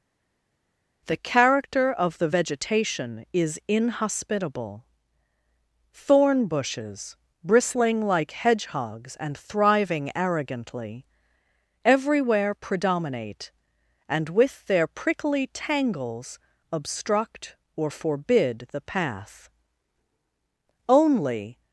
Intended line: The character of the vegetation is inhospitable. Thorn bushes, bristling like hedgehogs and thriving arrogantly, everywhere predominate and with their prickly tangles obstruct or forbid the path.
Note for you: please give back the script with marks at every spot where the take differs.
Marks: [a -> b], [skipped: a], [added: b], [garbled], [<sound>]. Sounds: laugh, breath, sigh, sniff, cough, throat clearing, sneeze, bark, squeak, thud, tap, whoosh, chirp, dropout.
The character of the vegetation is inhospitable. Thorn bushes, bristling like hedgehogs and thriving arrogantly, everywhere predominate and with their prickly tangles obstruct or forbid the path. [added: Only]